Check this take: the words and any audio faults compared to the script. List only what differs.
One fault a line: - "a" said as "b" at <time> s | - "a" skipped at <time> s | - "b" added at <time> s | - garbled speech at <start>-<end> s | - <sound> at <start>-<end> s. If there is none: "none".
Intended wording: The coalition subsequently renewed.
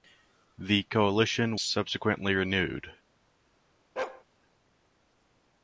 - bark at 4.0-4.2 s